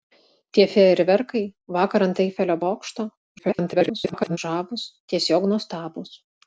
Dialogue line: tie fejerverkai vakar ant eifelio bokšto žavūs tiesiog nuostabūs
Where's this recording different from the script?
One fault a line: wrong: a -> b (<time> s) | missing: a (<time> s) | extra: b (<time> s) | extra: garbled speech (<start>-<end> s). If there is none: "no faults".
extra: garbled speech (3.4-4.4 s)